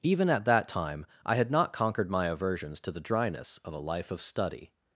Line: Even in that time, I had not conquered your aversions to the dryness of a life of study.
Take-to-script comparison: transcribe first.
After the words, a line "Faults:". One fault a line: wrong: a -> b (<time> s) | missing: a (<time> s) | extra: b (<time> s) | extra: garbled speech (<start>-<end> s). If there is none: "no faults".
Even at that time, I had not conquered my aversions to the dryness of a life of study.
Faults:
wrong: in -> at (0.3 s)
wrong: your -> my (2.1 s)